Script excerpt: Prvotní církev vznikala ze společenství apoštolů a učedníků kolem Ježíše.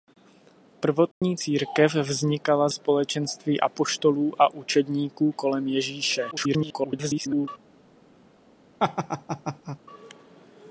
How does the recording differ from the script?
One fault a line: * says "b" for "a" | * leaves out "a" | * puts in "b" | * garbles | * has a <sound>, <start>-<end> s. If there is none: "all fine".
* has a dropout, 1.1-1.2 s
* leaves out "ze"
* garbles
* has a laugh, 8.8-9.8 s